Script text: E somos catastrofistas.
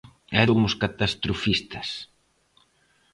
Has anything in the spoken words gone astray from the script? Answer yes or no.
no